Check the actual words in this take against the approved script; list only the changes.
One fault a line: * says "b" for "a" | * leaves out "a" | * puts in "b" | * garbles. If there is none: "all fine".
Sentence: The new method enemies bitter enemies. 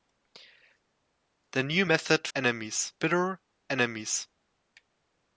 all fine